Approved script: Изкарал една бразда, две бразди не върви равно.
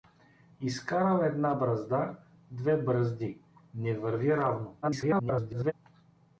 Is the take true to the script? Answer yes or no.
no